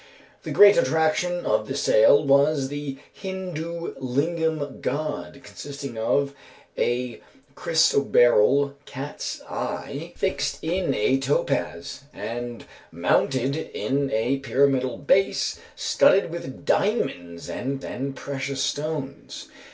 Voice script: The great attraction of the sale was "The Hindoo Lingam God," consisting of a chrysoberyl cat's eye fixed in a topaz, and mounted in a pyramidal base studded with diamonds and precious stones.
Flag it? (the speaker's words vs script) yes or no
yes